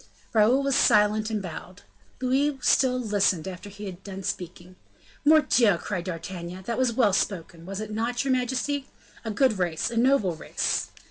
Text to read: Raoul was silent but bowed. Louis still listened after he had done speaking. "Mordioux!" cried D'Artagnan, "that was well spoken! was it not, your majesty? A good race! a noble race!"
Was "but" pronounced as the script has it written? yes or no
no